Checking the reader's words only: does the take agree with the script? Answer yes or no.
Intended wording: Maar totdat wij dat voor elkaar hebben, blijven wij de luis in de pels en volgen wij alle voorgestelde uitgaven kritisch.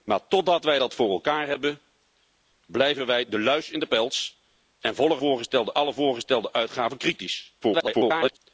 no